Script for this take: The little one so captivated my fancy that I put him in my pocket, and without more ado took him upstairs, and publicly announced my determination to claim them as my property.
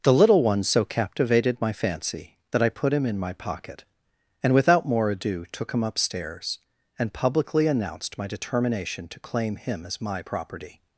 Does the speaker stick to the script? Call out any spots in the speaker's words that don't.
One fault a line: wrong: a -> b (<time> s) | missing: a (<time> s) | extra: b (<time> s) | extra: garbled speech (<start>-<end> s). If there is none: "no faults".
wrong: them -> him (9.6 s)